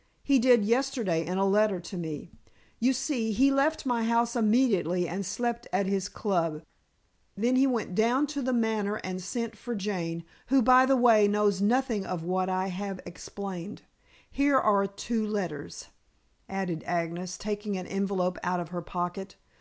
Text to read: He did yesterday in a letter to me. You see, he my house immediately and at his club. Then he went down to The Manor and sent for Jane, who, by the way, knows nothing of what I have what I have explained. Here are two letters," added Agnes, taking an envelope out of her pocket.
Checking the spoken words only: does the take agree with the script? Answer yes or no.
no